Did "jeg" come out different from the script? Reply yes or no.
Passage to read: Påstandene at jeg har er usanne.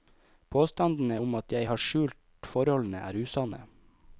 no